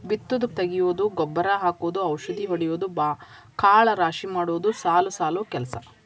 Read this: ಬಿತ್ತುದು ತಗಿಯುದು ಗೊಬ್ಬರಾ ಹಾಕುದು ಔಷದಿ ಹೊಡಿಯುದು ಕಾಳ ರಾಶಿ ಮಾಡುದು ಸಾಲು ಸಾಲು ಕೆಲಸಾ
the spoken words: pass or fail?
pass